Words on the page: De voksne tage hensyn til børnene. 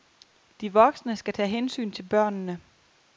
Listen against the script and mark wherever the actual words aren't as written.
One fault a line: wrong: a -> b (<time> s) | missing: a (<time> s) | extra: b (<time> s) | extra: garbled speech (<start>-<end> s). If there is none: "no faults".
extra: skal (1.1 s)